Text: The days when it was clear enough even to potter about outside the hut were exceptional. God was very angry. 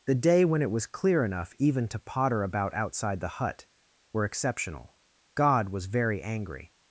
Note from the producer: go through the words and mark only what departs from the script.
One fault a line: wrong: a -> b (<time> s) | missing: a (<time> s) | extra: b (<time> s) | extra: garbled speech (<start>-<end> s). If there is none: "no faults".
wrong: days -> day (0.1 s)